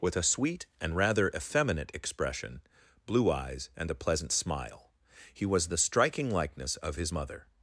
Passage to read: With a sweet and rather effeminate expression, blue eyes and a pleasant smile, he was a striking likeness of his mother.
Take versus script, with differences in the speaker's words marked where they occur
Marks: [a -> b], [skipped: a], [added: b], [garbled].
With a sweet and rather effeminate expression, blue eyes and a pleasant smile, he was [a -> the] striking likeness of his mother.